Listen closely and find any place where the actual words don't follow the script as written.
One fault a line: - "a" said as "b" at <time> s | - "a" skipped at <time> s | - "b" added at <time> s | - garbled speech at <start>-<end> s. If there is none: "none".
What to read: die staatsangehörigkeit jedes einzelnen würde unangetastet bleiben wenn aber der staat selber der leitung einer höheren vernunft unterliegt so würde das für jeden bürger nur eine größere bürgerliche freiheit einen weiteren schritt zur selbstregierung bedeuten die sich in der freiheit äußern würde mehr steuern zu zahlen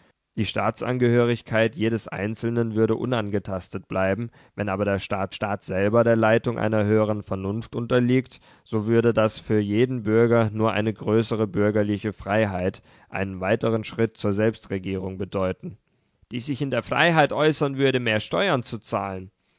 - "staat" added at 5.3 s